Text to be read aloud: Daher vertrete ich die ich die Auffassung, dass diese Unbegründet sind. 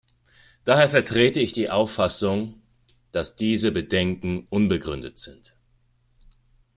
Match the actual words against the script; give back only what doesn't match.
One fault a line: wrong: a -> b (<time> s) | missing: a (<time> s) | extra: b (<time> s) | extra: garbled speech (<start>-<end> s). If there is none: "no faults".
missing: ich die (1.7 s)
extra: Bedenken (3.7 s)